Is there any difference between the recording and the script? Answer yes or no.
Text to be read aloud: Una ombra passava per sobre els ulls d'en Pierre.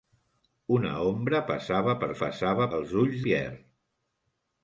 yes